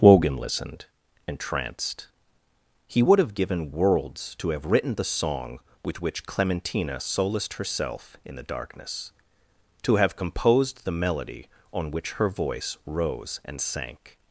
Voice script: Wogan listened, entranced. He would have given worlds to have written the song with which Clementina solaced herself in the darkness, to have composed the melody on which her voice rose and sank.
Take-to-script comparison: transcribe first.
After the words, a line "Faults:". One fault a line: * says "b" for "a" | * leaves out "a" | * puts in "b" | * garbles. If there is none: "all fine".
Wogan listened, entranced. He would have given worlds to have written the song with which Clementina solaced herself in the darkness, to have composed the melody on which her voice rose and sank.
Faults:
all fine